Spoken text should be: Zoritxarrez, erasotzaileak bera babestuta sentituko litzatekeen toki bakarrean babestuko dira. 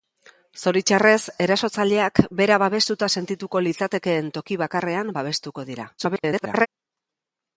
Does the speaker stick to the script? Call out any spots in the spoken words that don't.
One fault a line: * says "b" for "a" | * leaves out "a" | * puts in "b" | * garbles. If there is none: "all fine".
* garbles